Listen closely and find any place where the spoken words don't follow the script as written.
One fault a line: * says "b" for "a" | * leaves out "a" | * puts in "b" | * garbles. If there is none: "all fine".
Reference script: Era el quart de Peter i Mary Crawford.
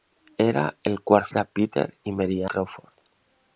all fine